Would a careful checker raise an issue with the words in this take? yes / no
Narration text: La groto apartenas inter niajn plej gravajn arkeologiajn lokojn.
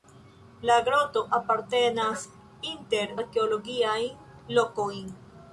yes